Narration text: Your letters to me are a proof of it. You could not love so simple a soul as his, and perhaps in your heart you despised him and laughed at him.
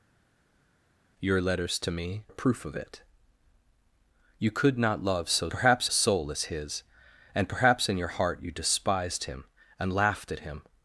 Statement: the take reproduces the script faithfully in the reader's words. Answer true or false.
false